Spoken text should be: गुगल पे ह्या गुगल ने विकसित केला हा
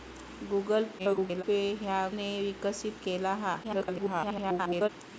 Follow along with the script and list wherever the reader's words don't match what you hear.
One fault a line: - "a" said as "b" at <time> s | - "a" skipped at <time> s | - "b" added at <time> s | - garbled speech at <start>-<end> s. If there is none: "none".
- garbled speech at 1.0-1.4 s
- "गुगल" skipped at 2.0 s
- garbled speech at 3.6-4.9 s